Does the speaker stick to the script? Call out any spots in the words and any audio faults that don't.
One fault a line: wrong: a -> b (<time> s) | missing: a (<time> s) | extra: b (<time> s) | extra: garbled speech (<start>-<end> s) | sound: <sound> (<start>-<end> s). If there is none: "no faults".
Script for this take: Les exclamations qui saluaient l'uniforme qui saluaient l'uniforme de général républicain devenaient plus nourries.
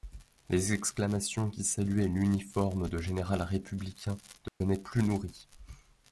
missing: qui saluaient l'uniforme (2.9 s)
sound: dropout (4.5-4.6 s)